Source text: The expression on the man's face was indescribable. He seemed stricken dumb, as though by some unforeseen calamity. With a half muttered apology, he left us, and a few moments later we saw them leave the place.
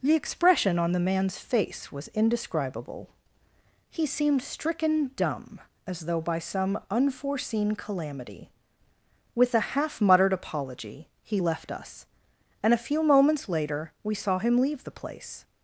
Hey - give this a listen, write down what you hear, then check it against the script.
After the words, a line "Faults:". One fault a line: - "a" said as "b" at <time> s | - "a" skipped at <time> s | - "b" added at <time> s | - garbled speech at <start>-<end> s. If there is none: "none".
The expression on the man's face was indescribable. He seemed stricken dumb, as though by some unforeseen calamity. With a half muttered apology, he left us, and a few moments later we saw him leave the place.
Faults:
- "them" said as "him" at 14.4 s